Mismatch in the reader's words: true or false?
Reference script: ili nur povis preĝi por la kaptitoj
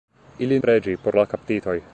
true